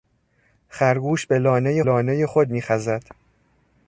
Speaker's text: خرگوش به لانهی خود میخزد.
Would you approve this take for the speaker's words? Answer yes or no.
no